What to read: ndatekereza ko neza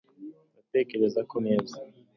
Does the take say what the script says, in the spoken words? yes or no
yes